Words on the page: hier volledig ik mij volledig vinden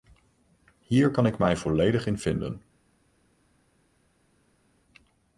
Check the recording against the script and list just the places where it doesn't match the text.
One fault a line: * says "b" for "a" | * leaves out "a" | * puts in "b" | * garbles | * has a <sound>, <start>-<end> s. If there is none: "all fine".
* says "kan" for "volledig"
* puts in "in"